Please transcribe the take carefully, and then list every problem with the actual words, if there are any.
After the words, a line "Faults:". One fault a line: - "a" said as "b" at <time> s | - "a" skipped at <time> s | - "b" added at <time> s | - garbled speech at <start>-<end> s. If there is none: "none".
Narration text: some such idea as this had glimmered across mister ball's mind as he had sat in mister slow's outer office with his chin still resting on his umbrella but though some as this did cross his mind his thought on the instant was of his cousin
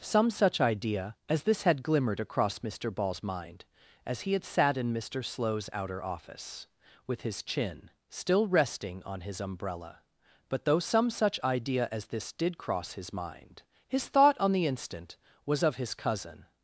some such idea as this had glimmered across mister ball's mind as he had sat in mister slow's outer office with his chin still resting on his umbrella but though some such idea as this did cross his mind his thought on the instant was of his cousin
Faults:
- "such idea" added at 11.1 s